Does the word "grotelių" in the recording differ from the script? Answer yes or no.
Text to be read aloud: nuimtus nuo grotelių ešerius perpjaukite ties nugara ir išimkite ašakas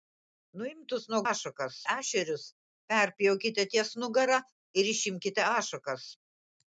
yes